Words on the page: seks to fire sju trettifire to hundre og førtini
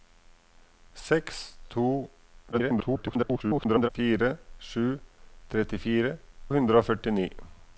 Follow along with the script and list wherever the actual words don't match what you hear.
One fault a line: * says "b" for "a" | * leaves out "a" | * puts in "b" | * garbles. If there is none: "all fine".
* garbles
* leaves out "to"